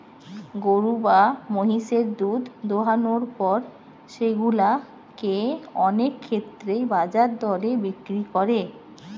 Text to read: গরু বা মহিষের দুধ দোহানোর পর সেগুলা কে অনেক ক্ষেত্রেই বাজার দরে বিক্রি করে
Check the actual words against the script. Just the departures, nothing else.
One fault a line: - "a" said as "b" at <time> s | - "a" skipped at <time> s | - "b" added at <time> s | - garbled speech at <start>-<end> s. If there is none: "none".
none